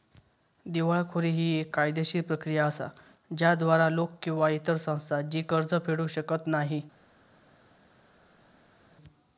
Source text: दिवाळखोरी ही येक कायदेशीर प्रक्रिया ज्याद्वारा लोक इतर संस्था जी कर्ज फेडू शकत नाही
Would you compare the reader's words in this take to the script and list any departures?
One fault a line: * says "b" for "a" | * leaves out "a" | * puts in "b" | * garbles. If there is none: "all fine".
* puts in "असा"
* puts in "किंवा"